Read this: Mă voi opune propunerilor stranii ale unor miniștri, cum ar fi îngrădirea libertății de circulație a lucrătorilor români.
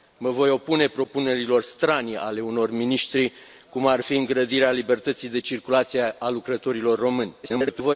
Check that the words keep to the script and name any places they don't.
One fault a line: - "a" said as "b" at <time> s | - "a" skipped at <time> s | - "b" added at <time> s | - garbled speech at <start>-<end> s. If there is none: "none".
- garbled speech at 7.4-7.9 s